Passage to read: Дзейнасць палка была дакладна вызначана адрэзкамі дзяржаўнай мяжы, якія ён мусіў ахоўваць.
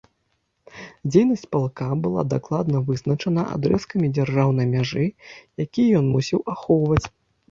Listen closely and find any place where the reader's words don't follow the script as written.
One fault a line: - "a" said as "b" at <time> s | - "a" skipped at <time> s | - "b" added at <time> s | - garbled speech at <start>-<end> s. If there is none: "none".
none